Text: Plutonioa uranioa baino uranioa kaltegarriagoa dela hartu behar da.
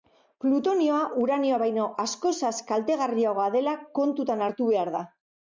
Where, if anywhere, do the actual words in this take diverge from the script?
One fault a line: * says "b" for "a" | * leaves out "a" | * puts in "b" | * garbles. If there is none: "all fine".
* says "askozaz" for "uranioa"
* puts in "kontutan"